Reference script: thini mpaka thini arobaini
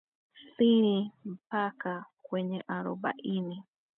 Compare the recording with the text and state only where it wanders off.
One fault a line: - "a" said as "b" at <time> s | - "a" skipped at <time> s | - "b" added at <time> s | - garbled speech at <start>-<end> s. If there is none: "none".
- "thini" said as "kwenye" at 2.2 s